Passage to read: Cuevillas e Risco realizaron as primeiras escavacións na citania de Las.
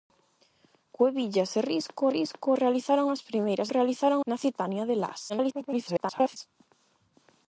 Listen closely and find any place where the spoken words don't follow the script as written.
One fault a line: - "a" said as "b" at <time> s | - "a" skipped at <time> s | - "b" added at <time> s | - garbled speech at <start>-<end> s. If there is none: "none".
- "Risco" added at 2.2 s
- "escavacións" said as "realizaron" at 3.7 s
- garbled speech at 5.3-6.4 s